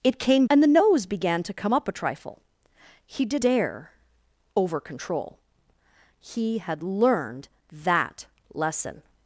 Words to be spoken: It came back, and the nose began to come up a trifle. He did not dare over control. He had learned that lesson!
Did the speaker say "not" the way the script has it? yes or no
no